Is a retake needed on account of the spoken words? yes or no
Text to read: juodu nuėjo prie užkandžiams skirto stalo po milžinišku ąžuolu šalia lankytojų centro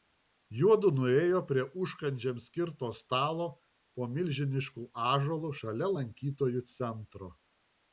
no